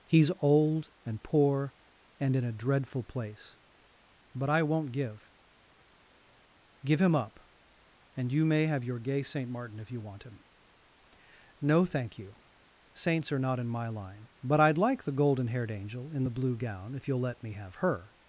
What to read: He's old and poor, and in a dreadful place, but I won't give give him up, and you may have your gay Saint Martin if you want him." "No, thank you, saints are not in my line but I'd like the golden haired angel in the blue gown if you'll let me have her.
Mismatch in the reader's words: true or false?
false